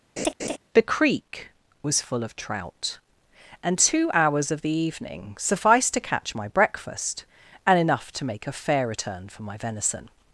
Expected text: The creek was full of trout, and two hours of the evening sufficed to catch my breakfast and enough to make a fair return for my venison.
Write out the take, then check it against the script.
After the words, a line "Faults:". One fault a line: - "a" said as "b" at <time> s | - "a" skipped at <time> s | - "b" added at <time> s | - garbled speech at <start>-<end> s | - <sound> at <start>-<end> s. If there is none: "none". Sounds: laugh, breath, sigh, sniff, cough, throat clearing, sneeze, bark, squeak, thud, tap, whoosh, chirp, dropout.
The creek was full of trout, and two hours of the evening sufficed to catch my breakfast and enough to make a fair return for my venison.
Faults:
- laugh at 0.2-0.6 s